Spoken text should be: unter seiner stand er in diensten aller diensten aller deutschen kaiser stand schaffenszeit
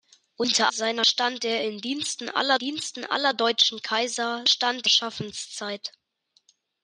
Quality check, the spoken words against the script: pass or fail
pass